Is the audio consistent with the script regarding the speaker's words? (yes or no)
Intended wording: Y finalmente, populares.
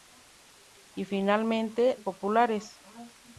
yes